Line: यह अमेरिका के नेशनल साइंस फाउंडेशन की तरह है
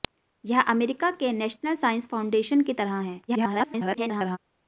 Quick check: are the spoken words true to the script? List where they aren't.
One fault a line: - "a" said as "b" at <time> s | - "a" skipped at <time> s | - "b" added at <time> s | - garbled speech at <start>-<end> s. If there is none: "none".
- garbled speech at 3.3-4.4 s